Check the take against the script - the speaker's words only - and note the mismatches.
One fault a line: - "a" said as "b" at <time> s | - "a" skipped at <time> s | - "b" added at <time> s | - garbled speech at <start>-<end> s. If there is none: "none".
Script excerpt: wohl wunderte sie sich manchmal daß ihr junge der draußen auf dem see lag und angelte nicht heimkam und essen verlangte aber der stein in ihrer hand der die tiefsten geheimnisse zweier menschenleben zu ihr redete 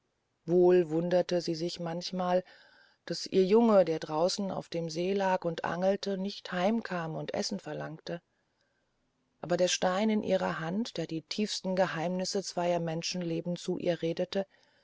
none